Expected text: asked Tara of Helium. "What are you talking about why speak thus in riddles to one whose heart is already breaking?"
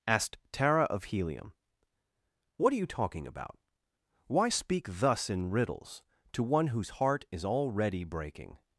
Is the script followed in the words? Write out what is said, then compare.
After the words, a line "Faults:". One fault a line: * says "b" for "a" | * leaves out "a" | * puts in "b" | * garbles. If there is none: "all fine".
asked Tara of Helium. "What are you talking about why speak thus in riddles to one whose heart is already breaking?"
Faults:
all fine